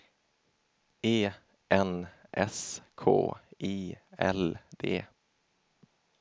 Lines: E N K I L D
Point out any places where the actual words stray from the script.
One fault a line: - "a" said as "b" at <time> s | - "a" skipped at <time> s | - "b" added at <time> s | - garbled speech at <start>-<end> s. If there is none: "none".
- "S" added at 2.3 s